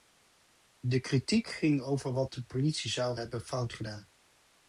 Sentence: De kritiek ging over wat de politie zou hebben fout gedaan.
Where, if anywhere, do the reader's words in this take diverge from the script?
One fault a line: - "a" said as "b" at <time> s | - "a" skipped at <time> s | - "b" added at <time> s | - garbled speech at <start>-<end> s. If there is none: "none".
none